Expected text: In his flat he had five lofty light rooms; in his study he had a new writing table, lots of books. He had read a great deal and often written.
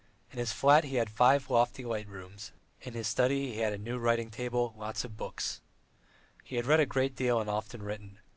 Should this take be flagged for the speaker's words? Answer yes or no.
no